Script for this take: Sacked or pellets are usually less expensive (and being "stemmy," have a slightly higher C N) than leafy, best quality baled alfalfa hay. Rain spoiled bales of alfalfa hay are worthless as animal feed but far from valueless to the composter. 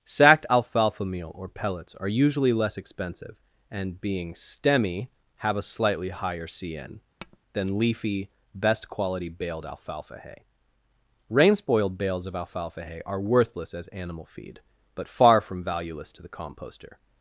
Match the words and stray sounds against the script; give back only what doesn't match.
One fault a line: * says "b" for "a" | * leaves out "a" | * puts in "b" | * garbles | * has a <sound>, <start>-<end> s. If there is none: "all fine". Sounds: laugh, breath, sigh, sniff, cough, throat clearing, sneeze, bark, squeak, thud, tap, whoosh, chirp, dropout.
* puts in "alfalfa meal"
* has a tap, 7.2-7.4 s